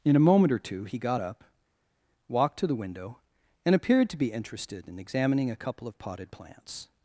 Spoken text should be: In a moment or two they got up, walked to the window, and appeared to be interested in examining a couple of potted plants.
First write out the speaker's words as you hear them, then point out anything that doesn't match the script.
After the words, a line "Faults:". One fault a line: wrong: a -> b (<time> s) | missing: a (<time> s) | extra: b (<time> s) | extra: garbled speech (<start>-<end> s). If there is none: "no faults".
In a moment or two he got up, walked to the window, and appeared to be interested in examining a couple of potted plants.
Faults:
wrong: they -> he (0.8 s)